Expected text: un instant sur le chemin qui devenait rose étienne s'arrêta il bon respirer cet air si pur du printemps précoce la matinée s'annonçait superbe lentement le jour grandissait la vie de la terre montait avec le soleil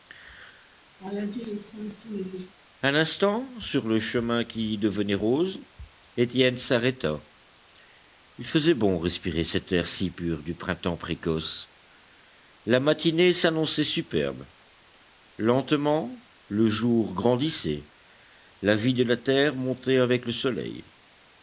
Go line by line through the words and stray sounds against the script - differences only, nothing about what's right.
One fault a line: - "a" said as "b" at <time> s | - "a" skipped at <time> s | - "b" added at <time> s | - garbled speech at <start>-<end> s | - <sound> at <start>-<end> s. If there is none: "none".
- laugh at 1.0-2.5 s
- "faisait" added at 8.5 s